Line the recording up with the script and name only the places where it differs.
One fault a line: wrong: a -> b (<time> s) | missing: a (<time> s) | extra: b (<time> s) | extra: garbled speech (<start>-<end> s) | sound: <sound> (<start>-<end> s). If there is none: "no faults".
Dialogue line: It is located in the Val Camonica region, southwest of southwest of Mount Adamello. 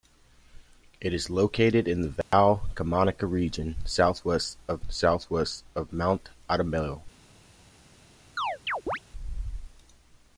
sound: dropout (2.2-2.3 s)
sound: chirp (8.4-9.0 s)